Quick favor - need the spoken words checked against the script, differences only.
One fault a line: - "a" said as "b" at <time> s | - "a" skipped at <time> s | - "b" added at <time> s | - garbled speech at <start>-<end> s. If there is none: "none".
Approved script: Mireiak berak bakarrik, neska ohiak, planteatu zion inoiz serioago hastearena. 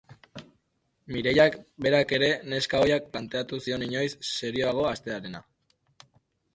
- "bakarrik" said as "ere" at 2.2 s